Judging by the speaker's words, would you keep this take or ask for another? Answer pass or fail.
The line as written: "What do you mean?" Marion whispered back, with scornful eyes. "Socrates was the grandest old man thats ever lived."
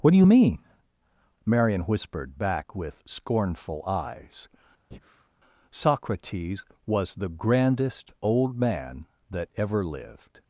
fail